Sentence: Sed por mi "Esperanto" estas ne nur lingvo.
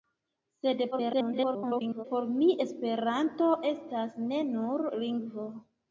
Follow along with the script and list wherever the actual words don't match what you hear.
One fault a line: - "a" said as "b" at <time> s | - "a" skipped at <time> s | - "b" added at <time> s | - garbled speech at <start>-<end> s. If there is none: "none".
- garbled speech at 0.9-2.1 s